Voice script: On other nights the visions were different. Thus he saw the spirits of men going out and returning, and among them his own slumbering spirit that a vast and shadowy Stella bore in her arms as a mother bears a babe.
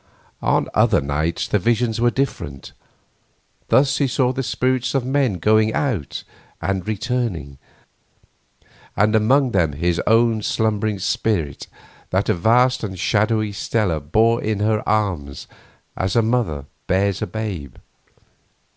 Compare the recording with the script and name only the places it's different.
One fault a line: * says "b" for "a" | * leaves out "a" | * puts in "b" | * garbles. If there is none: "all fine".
all fine